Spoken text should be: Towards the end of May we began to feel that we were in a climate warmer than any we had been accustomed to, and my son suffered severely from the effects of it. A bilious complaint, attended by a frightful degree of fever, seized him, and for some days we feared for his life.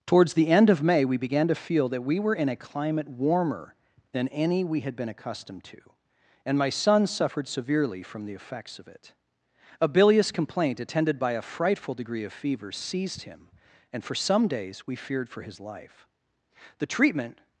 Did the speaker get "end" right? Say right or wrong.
right